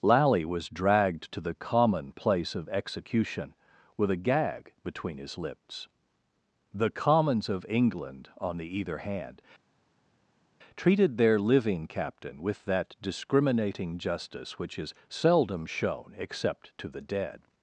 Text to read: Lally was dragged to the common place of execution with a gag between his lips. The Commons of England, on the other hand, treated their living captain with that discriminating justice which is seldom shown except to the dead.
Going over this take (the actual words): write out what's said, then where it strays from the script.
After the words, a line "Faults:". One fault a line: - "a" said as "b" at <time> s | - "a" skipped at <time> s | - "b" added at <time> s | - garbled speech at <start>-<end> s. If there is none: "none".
Lally was dragged to the common place of execution with a gag between his lips. The Commons of England, on the either hand, treated their living captain with that discriminating justice which is seldom shown except to the dead.
Faults:
- "other" said as "either" at 8.8 s